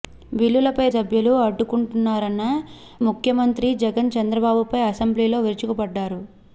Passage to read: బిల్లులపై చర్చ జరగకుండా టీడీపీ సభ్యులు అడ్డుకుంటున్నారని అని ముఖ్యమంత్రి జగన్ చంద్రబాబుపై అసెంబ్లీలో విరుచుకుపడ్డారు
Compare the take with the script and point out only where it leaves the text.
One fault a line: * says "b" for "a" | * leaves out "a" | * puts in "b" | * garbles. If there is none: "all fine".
* leaves out "చర్చ జరగకుండా టీడీపీ"
* leaves out "అని"